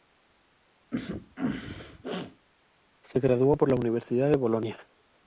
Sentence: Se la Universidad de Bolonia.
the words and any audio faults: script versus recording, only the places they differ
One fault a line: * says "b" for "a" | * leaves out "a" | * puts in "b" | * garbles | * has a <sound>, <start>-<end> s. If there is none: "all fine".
* has a sneeze, 0.9-2.5 s
* puts in "graduó por"